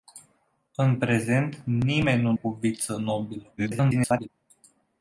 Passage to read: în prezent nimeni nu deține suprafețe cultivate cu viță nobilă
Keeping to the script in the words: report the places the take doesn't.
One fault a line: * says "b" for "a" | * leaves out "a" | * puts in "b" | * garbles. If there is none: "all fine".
* leaves out "deține suprafețe cultivate"
* garbles